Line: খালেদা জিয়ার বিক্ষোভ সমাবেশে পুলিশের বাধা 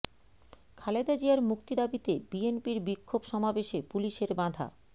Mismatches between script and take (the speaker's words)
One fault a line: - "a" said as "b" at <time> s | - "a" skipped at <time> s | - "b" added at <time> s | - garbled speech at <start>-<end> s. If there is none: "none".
- "মুক্তি দাবিতে বিএনপির" added at 1.5 s